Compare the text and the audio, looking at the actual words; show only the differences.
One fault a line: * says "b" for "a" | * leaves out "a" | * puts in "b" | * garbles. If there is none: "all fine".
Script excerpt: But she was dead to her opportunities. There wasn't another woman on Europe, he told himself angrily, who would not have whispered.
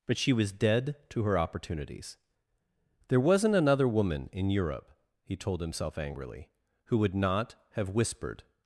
* says "in" for "on"